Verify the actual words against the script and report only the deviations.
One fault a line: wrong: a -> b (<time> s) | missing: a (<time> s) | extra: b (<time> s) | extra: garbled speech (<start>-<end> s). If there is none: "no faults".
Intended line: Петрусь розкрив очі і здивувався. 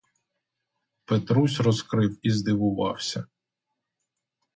missing: очі (2.2 s)